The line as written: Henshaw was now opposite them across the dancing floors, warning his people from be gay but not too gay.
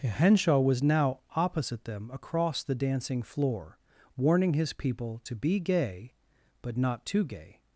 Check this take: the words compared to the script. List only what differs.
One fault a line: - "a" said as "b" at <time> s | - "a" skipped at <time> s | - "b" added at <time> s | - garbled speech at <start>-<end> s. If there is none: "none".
- "floors" said as "floor" at 3.2 s
- "from" said as "to" at 5.2 s